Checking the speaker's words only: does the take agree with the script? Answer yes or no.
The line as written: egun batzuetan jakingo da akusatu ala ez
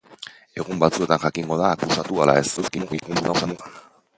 no